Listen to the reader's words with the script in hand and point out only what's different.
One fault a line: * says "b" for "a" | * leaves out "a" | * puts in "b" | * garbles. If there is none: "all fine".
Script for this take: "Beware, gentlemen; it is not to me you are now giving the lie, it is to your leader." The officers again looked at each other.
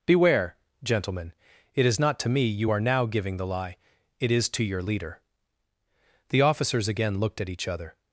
all fine